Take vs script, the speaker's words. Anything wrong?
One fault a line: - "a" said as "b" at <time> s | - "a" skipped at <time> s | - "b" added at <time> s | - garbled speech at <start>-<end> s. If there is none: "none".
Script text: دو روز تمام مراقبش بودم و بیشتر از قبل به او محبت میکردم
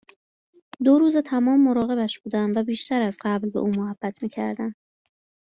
none